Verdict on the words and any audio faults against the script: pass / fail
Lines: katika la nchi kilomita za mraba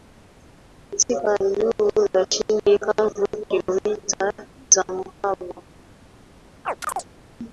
fail